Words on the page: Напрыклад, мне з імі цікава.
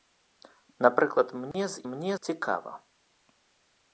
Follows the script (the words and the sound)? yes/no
no